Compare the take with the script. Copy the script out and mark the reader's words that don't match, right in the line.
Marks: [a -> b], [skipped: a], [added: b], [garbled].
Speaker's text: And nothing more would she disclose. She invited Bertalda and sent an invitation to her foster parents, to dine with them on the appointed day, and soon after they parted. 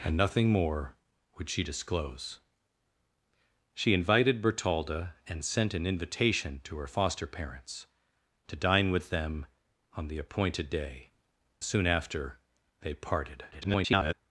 And nothing more would she disclose. She invited Bertalda and sent an invitation to her foster parents, to dine with them on the appointed day, [skipped: and] soon after they parted. [garbled]